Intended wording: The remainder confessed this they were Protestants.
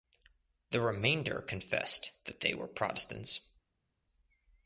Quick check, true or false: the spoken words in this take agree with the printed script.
false